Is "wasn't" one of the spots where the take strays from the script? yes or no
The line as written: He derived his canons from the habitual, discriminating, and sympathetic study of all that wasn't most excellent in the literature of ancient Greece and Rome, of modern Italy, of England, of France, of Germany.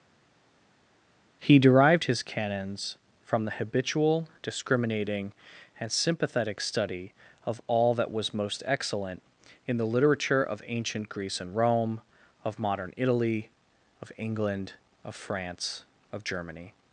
yes